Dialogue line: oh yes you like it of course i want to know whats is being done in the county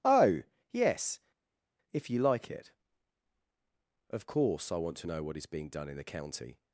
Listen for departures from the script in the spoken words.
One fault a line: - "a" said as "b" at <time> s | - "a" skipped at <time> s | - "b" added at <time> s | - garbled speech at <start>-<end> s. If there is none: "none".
- "if" added at 1.9 s
- "whats" said as "what" at 5.2 s